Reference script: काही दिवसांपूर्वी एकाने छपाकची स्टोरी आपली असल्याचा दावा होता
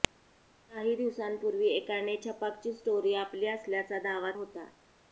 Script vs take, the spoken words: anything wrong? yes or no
no